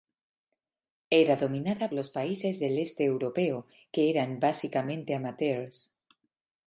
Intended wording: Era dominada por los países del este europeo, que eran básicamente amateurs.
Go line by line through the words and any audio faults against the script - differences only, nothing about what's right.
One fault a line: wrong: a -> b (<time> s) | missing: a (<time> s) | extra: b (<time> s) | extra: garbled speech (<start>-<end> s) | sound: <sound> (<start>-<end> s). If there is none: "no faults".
missing: por (1.9 s)